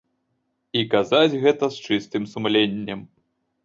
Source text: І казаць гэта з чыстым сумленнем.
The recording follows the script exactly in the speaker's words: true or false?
true